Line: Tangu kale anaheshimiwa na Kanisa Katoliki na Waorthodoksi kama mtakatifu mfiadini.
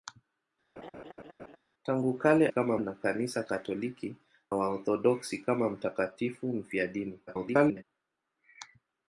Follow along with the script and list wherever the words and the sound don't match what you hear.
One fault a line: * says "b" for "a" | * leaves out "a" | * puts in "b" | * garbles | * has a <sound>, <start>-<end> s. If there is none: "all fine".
* has a laugh, 0.8-1.6 s
* says "kama" for "anaheshimiwa"
* leaves out "na"
* garbles